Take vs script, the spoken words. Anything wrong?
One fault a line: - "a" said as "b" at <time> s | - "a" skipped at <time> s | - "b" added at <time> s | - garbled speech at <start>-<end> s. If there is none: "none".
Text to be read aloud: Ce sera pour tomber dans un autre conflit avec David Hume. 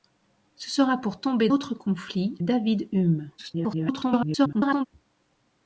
- "dans un" skipped at 1.5 s
- "avec" skipped at 2.4 s
- garbled speech at 3.4-4.9 s